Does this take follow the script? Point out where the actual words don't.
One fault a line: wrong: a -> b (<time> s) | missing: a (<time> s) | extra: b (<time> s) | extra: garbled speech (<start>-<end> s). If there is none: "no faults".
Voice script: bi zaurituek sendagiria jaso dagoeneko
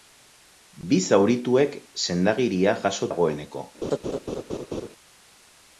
no faults